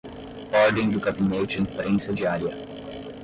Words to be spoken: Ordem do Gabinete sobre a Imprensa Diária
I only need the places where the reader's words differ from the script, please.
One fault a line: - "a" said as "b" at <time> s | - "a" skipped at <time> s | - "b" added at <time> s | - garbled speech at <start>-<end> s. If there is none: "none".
- "sobre" skipped at 1.6 s